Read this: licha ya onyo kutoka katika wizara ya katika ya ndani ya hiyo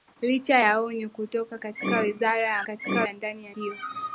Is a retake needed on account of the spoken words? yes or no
no